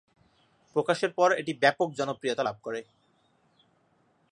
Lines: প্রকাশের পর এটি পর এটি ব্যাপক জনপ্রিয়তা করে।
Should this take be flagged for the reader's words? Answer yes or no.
yes